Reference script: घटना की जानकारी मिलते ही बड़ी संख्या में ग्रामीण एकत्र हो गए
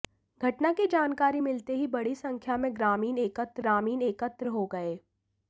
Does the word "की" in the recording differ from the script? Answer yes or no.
no